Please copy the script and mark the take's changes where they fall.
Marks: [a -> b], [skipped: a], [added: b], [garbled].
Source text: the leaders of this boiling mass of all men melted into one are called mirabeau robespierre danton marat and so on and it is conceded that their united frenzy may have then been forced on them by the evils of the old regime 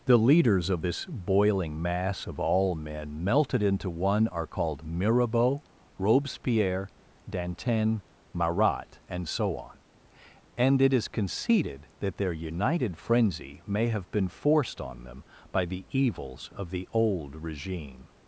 the leaders of this boiling mass of all men melted into one are called mirabeau robespierre danton marat and so on and it is conceded that their united frenzy may have [skipped: then] been forced on them by the evils of the old regime